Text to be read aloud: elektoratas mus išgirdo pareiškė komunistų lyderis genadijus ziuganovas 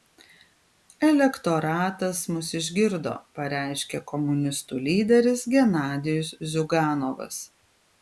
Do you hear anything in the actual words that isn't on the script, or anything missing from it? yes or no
no